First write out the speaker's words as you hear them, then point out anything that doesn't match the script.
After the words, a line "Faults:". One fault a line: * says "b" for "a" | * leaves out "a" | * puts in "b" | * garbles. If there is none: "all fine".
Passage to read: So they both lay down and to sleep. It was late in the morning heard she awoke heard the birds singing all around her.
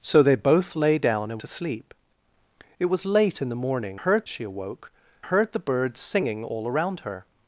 So they both lay down and to sleep. It was late in the morning heard she awoke heard the birds singing all around her.
Faults:
all fine